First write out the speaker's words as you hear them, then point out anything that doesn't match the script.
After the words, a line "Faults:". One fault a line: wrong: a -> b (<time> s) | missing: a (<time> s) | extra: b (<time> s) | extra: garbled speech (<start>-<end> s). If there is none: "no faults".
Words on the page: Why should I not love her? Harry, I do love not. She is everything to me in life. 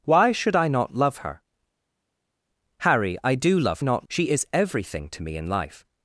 Why should I not love her? Harry, I do love not. She is everything to me in life.
Faults:
no faults